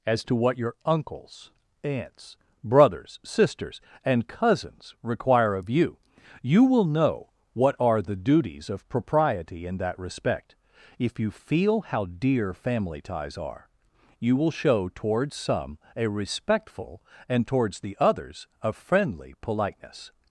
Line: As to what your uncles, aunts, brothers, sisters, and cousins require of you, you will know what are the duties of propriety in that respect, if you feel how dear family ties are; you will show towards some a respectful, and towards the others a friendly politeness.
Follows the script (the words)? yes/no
yes